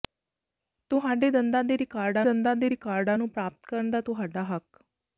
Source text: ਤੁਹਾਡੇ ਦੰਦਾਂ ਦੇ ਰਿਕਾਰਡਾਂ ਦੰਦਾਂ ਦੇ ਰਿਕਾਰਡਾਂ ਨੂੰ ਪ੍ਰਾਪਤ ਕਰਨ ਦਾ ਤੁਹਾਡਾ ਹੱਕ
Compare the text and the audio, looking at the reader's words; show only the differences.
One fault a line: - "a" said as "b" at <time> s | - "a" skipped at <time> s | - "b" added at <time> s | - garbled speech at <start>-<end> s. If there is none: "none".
none